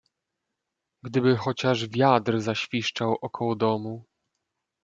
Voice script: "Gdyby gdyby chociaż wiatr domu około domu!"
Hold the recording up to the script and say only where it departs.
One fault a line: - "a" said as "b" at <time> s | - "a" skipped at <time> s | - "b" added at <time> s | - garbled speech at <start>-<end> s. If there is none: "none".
- "gdyby" skipped at 1.4 s
- "domu" said as "zaświszczał" at 2.4 s